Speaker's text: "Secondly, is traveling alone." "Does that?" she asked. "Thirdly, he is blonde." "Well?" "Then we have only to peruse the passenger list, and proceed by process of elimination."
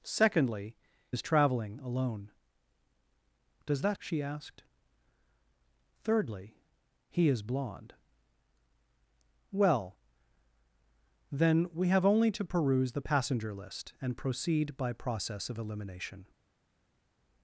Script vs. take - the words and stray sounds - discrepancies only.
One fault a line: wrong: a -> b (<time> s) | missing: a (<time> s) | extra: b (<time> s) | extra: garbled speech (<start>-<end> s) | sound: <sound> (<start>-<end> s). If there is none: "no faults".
no faults